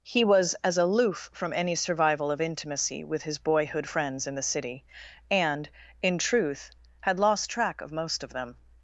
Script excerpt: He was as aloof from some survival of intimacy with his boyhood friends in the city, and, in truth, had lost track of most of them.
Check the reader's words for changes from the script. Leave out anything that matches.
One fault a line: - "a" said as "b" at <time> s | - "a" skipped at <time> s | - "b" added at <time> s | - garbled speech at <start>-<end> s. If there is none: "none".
- "some" said as "any" at 1.5 s